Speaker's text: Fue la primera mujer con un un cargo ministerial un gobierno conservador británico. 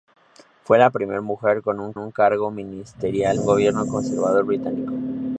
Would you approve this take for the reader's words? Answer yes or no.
yes